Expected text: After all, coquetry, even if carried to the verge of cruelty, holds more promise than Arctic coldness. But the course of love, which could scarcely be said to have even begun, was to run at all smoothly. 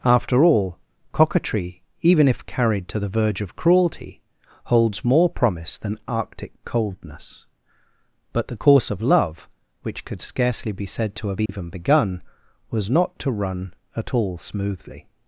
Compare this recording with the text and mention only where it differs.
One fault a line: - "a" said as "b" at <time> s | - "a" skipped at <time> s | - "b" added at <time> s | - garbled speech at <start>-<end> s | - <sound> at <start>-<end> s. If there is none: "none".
- dropout at 11.5-11.5 s
- "not" added at 12.9 s